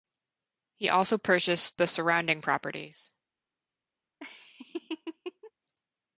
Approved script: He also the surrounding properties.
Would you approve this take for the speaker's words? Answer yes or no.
no